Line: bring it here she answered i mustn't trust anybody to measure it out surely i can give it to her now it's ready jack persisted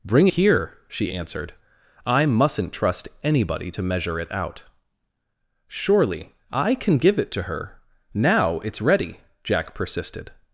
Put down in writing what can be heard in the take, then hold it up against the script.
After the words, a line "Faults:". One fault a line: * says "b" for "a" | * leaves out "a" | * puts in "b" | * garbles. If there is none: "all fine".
bring here she answered i mustn't trust anybody to measure it out surely i can give it to her now it's ready jack persisted
Faults:
* leaves out "it"